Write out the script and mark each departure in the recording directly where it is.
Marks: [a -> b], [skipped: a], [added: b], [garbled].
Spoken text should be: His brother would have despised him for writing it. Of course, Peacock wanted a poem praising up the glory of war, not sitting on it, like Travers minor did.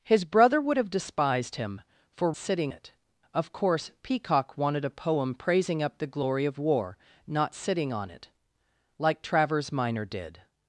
His brother would have despised him for [writing -> sitting] it. Of course, Peacock wanted a poem praising up the glory of war, not sitting on it, like Travers minor did.